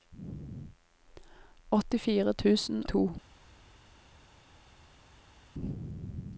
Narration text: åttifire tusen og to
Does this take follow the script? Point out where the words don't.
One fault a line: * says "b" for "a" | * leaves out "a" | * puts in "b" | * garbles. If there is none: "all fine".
* leaves out "og"